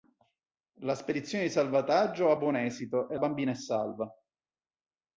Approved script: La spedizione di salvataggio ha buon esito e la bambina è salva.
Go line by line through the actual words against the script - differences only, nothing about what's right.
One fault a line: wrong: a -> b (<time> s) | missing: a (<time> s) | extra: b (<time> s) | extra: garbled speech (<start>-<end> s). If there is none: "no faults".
missing: la (3.2 s)